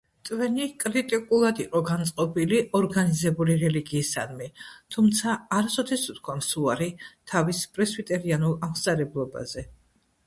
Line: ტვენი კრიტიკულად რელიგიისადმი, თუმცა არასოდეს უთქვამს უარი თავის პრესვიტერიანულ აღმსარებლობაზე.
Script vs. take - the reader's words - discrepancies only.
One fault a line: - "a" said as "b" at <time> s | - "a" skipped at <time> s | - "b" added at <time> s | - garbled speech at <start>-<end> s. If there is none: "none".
- "იყო განწყობილი ორგანიზებული" added at 1.6 s